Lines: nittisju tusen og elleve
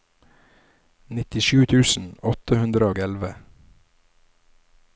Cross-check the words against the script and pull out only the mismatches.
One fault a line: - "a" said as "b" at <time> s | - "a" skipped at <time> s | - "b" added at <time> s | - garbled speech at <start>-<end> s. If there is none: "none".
- "åtte hundre" added at 2.3 s